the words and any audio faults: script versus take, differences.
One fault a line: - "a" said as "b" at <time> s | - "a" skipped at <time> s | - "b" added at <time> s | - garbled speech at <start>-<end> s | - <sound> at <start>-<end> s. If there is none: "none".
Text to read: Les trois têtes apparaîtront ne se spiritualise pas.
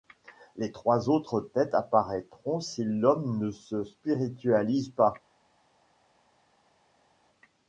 - "autres" added at 1.1 s
- "si l'homme" added at 2.6 s